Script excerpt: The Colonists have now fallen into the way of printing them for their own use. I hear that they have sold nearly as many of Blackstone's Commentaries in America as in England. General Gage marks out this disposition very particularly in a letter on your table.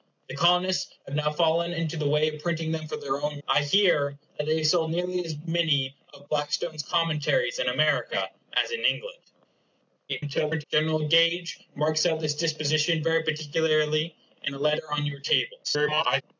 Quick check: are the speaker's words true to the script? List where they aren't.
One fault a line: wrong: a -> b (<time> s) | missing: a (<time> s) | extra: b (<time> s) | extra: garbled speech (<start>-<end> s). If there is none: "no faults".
missing: use (3.4 s)
extra: garbled speech (10.1-10.6 s)
extra: garbled speech (15.6-16.2 s)